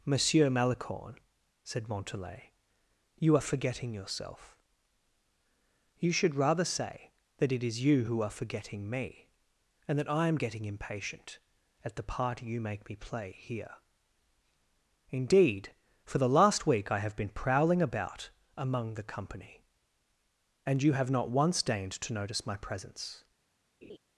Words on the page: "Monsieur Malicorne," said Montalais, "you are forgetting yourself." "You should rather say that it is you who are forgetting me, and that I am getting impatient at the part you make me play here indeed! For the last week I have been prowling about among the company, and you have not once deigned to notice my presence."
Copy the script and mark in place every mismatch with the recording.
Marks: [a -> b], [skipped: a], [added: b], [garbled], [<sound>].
"Monsieur Malicorne," said Montalais, "you are forgetting yourself." "You should rather say that it is you who are forgetting me, and that I am getting impatient at the part you make me play here indeed! For the last week I have been prowling about among the company, and you have not once deigned to notice my presence." [laugh]